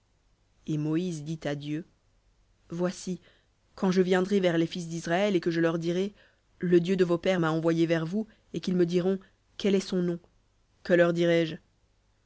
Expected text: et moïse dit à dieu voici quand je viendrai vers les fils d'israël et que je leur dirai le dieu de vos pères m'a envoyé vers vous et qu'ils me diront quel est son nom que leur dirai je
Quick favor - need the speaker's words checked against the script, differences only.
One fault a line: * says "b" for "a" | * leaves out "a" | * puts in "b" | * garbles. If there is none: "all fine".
all fine